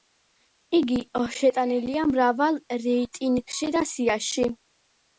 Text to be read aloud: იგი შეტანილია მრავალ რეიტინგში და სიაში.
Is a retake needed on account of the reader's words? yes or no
no